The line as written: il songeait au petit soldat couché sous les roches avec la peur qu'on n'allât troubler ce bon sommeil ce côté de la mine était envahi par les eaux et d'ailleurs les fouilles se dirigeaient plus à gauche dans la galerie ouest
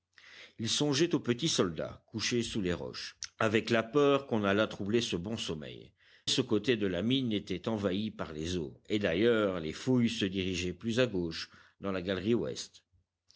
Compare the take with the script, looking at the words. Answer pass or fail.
pass